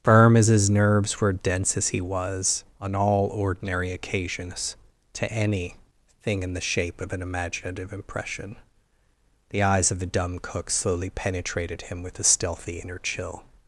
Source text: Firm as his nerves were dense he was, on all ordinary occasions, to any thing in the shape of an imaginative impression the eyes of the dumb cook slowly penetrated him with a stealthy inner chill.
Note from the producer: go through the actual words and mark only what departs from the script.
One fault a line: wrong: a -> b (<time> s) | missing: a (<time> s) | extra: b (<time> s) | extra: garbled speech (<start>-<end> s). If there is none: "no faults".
extra: as (1.8 s)